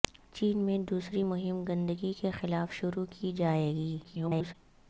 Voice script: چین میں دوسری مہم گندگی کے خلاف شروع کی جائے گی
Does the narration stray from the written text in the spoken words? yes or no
yes